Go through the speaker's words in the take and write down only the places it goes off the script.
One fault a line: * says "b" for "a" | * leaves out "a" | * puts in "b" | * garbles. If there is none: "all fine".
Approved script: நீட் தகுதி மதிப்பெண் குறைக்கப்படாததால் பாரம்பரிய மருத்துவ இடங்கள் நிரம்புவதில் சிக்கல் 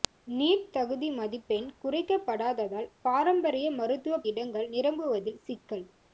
all fine